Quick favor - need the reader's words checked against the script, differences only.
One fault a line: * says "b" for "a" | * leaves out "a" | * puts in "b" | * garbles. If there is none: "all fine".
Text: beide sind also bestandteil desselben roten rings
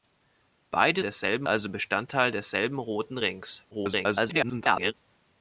* says "desselben" for "sind"
* garbles